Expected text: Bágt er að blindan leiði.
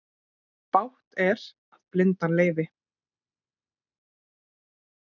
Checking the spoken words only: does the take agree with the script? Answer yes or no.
yes